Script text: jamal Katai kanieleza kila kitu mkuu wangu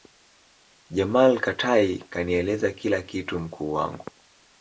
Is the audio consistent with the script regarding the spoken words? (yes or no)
yes